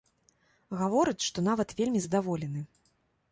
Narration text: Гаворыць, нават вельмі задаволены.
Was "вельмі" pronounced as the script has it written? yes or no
yes